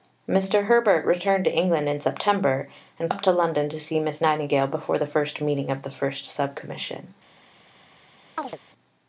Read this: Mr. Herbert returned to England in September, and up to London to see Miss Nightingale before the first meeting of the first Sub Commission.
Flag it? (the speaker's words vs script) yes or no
no